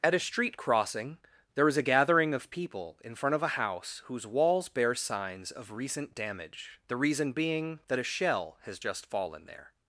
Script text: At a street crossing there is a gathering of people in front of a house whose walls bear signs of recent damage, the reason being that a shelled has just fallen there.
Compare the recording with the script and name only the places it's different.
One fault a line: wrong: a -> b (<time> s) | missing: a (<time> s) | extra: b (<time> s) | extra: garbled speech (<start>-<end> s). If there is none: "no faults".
wrong: shelled -> shell (8.0 s)